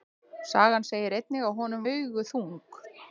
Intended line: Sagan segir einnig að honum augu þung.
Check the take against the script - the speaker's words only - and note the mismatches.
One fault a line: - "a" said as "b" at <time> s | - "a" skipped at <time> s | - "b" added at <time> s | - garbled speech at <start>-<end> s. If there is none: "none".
none